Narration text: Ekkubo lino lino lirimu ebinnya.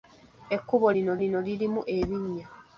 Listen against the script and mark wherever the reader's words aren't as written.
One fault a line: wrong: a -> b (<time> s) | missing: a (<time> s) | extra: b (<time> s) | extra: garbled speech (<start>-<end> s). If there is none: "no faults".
no faults